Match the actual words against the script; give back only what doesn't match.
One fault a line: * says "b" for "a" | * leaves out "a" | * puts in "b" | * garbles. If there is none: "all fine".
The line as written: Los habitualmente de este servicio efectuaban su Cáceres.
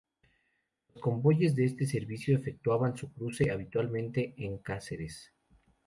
* says "convoyes" for "habitualmente"
* puts in "cruce habitualmente en"